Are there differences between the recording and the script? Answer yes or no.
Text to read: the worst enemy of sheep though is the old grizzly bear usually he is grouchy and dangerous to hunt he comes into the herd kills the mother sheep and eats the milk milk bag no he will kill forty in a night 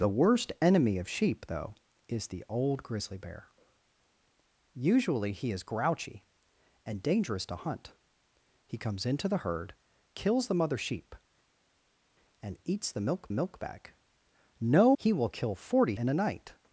no